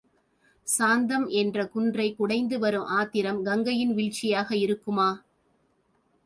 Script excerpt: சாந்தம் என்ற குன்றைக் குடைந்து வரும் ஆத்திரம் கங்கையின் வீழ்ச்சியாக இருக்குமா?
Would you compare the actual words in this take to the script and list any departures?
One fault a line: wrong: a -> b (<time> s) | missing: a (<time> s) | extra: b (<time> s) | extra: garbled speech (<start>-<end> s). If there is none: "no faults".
no faults